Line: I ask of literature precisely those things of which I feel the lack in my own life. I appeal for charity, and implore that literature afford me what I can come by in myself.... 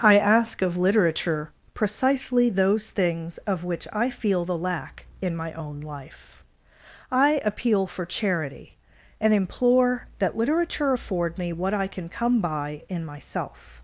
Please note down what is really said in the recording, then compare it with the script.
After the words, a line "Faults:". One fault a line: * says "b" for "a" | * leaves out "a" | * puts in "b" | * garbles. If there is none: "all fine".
I ask of literature precisely those things of which I feel the lack in my own life. I appeal for charity, and implore that literature afford me what I can come by in myself....
Faults:
all fine